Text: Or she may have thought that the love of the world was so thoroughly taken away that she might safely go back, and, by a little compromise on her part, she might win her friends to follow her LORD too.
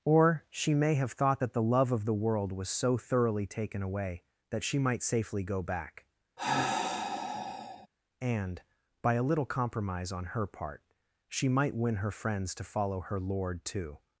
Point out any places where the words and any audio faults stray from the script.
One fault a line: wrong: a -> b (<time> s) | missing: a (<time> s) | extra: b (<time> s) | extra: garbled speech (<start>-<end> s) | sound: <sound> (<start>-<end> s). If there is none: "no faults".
sound: sigh (6.4-7.9 s)